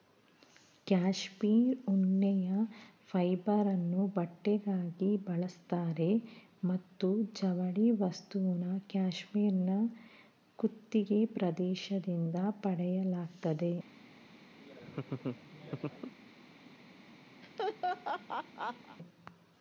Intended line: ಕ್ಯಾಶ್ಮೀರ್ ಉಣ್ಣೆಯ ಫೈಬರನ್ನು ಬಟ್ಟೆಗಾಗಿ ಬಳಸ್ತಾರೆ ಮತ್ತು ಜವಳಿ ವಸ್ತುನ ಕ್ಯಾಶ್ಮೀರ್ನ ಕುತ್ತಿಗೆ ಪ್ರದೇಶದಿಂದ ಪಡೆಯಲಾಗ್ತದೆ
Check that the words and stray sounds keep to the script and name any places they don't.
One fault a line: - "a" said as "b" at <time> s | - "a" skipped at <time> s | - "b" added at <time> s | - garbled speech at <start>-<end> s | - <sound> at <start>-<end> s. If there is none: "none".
- laugh at 14.6-16.1 s
- laugh at 17.4-19.0 s